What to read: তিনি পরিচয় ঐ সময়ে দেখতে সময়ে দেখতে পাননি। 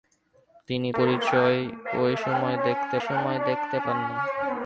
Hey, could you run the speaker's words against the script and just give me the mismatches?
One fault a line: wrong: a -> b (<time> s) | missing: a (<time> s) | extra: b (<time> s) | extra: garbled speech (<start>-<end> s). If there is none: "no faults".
no faults